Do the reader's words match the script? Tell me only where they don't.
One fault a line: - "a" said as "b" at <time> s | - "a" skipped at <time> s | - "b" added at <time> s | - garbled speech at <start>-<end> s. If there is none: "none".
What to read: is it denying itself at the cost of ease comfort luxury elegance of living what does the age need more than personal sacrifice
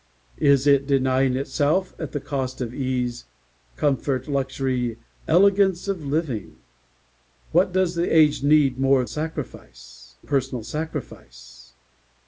- "than" said as "sacrifice" at 9.0 s